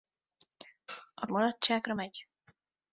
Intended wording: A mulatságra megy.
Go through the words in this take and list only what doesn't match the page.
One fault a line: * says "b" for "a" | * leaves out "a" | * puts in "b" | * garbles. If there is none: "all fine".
all fine